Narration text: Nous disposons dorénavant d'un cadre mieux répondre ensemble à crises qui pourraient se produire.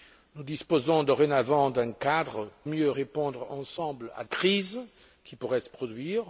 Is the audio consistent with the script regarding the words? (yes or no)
yes